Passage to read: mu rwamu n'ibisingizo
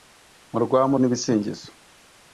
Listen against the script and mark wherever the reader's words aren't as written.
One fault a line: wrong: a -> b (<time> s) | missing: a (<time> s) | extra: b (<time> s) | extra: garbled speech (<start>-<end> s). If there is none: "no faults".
no faults